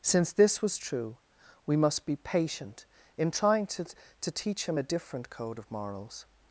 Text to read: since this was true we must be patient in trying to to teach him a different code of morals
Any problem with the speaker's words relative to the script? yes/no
no